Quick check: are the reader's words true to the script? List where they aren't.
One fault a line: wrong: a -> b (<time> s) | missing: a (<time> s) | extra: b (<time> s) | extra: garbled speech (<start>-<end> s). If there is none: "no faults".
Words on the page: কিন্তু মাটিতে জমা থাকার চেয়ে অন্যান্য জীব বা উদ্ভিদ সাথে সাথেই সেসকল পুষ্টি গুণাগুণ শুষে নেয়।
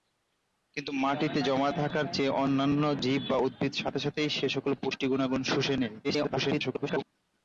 extra: garbled speech (6.0-7.0 s)